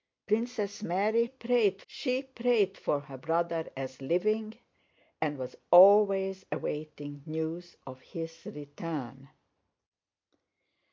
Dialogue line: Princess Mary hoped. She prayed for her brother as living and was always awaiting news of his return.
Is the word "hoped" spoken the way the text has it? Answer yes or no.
no